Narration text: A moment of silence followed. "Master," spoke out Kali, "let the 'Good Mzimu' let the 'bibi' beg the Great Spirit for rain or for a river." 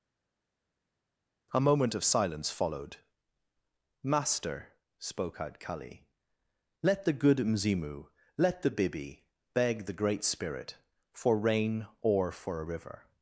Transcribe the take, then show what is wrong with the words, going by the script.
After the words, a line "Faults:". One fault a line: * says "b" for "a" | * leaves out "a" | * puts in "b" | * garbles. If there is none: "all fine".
A moment of silence followed. "Master," spoke out Kali, "let the 'Good Mzimu' let the 'bibi' beg the Great Spirit for rain or for a river."
Faults:
all fine